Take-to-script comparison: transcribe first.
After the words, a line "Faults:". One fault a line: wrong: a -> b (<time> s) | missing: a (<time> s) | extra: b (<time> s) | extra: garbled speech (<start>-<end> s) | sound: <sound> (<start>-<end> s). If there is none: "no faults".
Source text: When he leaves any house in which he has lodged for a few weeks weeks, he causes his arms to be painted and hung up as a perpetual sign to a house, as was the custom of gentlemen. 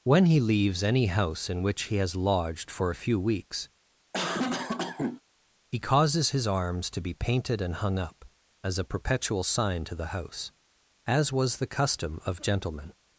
When he leaves any house in which he has lodged for a few weeks, he causes his arms to be painted and hung up as a perpetual sign to the house, as was the custom of gentlemen.
Faults:
missing: weeks (3.7 s)
sound: cough (4.1-5.2 s)
wrong: a -> the (9.9 s)